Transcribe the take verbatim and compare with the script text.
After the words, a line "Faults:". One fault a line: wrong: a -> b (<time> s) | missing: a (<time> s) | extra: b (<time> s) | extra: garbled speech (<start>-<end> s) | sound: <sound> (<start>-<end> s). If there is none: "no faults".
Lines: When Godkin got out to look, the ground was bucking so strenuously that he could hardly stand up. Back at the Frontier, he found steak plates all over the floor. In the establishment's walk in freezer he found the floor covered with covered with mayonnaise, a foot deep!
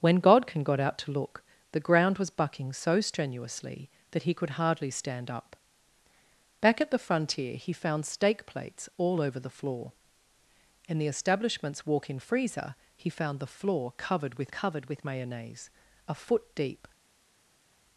When Godkin got out to look, the ground was bucking so strenuously that he could hardly stand up. Back at the Frontier, he found steak plates all over the floor. In the establishment's walk in freezer he found the floor covered with covered with mayonnaise, a foot deep!
Faults:
no faults